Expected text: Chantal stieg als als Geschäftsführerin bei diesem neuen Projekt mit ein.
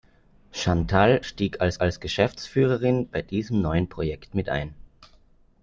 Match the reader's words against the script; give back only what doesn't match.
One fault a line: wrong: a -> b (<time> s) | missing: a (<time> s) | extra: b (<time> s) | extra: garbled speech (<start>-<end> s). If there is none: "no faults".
no faults